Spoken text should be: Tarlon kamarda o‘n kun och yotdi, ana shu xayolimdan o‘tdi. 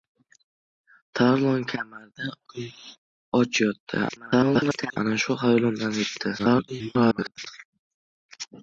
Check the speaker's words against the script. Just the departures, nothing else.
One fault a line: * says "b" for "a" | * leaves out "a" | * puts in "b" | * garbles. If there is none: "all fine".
* leaves out "o‘n"
* garbles
* garbles